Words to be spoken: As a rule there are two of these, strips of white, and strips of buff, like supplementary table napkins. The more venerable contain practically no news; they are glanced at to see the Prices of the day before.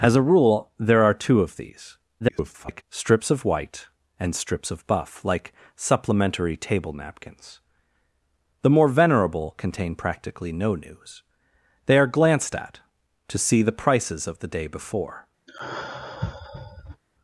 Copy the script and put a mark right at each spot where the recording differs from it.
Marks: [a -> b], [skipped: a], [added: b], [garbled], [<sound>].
As a rule there are two of these, [garbled] strips of white, and strips of buff, like supplementary table napkins. The more venerable contain practically no news; they are glanced at to see the Prices of the day before. [sigh]